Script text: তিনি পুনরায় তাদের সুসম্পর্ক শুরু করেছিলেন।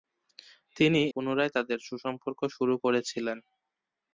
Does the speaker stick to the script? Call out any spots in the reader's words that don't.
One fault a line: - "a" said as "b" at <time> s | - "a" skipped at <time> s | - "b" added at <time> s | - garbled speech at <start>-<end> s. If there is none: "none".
none